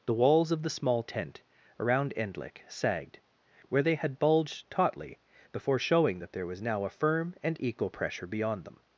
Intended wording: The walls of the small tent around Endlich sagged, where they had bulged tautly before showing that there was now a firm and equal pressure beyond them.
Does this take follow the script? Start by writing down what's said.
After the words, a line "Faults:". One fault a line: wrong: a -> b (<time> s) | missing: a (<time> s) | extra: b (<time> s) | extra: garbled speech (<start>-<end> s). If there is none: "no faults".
The walls of the small tent around Endlich sagged, where they had bulged tautly before showing that there was now a firm and equal pressure beyond them.
Faults:
no faults